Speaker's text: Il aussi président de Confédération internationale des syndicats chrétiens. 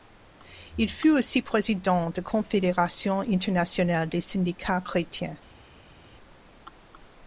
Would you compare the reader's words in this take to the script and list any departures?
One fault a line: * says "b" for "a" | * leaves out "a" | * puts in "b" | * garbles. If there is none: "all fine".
* puts in "fut"